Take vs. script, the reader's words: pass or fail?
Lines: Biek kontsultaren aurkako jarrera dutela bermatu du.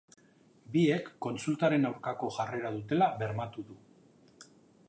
pass